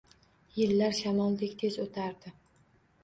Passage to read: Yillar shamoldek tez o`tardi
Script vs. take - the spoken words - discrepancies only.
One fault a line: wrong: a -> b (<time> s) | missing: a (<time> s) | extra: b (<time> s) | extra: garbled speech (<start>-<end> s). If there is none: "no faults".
no faults